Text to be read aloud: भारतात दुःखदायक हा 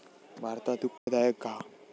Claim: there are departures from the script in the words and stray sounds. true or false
true